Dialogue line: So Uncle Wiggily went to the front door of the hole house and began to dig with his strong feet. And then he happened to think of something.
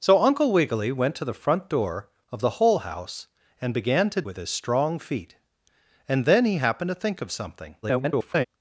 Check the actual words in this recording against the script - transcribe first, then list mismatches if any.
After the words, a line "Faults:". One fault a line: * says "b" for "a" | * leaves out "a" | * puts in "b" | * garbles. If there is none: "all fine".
So Uncle Wiggily went to the front door of the hole house and began to with his strong feet. And then he happened to think of something. [garbled]
Faults:
* leaves out "dig"
* garbles